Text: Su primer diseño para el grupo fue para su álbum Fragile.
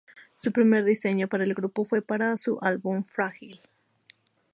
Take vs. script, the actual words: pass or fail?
pass